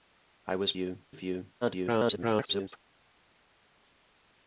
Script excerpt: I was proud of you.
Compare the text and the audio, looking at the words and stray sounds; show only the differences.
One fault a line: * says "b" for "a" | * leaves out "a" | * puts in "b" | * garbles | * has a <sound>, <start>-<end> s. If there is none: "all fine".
* says "you" for "proud"
* garbles